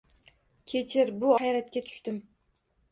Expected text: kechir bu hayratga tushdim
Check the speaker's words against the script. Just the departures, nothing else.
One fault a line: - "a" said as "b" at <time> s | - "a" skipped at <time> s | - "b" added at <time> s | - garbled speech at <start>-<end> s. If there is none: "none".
none